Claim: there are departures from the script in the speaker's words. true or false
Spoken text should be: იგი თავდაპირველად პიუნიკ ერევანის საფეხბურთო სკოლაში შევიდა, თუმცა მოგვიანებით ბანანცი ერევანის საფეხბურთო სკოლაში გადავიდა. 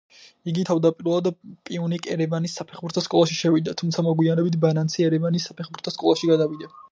false